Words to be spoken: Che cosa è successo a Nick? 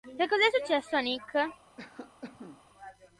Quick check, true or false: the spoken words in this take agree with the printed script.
true